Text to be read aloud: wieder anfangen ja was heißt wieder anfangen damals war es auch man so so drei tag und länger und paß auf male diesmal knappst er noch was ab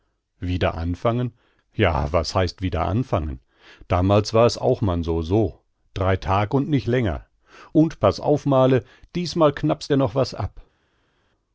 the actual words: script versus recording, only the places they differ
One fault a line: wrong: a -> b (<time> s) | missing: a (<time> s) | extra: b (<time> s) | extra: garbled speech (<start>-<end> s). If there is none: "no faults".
extra: nich (6.7 s)